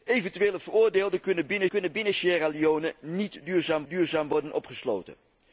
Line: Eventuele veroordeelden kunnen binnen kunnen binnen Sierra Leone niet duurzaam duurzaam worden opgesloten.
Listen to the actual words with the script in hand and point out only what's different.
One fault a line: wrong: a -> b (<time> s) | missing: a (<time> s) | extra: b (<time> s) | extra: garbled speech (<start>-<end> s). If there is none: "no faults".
no faults